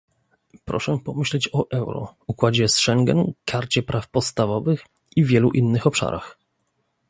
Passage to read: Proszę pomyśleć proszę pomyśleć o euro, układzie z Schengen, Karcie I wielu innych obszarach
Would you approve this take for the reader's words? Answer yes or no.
no